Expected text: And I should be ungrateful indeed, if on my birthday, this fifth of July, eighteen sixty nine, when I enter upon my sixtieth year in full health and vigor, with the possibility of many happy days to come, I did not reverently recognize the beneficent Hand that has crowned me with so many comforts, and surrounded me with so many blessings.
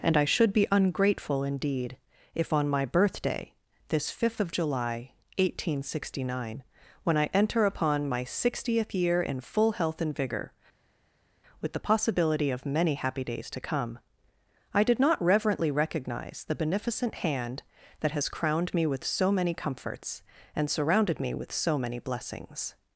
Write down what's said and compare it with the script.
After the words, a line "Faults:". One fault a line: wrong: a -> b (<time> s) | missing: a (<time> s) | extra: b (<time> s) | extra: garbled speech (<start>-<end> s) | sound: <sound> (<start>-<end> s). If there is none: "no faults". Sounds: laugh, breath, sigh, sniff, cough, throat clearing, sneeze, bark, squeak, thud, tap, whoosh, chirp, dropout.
And I should be ungrateful indeed, if on my birthday, this fifth of July, eighteen sixty nine, when I enter upon my sixtieth year in full health and vigor, with the possibility of many happy days to come, I did not reverently recognize the beneficent Hand that has crowned me with so many comforts, and surrounded me with so many blessings.
Faults:
no faults